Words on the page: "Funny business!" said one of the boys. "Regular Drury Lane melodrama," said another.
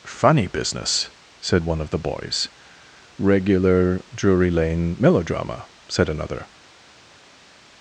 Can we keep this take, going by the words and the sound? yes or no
yes